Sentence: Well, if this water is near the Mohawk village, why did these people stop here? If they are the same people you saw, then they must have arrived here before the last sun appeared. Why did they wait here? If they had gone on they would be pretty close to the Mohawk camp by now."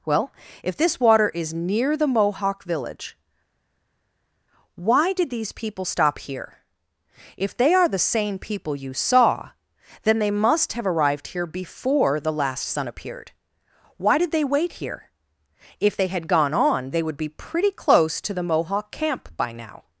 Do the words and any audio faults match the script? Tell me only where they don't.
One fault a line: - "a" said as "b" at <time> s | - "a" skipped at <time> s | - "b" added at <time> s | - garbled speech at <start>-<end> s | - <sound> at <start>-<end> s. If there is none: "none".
none